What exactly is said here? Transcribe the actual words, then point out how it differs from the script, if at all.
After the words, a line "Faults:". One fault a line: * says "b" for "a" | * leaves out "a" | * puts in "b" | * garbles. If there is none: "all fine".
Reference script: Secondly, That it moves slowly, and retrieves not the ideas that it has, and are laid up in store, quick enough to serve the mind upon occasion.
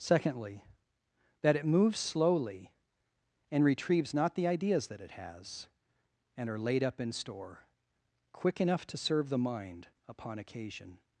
Secondly, That it moves slowly, and retrieves not the ideas that it has, and are laid up in store, quick enough to serve the mind upon occasion.
Faults:
all fine